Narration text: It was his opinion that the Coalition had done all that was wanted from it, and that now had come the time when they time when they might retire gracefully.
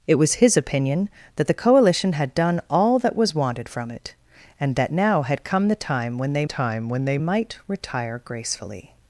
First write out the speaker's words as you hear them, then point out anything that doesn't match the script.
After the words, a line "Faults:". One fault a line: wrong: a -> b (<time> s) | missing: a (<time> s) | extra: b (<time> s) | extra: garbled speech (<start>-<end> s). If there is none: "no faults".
It was his opinion that the Coalition had done all that was wanted from it, and that now had come the time when they time when they might retire gracefully.
Faults:
no faults